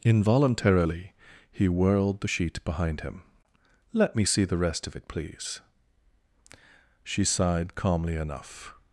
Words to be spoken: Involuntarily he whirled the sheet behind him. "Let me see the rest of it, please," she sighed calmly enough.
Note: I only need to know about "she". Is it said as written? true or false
true